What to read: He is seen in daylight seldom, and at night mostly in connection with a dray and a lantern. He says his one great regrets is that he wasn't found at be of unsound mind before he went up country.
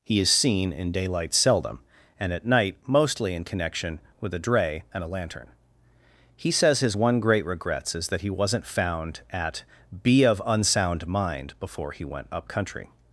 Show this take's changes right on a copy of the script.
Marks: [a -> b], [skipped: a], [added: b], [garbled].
He is seen in daylight seldom, and at night mostly in connection with a dray and a lantern. He says his one great regrets is that he wasn't found at be of unsound mind before he went up country.